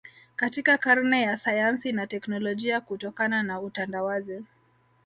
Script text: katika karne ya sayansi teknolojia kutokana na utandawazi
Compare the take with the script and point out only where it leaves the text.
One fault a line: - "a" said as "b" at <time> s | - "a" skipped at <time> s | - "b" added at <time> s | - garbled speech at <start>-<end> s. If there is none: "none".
- "na" added at 1.9 s